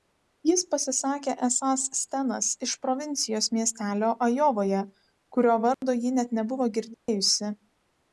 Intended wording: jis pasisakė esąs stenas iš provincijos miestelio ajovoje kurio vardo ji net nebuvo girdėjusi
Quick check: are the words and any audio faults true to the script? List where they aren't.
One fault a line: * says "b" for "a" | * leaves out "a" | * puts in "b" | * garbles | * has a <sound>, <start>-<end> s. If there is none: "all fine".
* has a dropout, 5.7-5.8 s
* has a dropout, 6.9-7.1 s